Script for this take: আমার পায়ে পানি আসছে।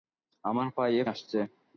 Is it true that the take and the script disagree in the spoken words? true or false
true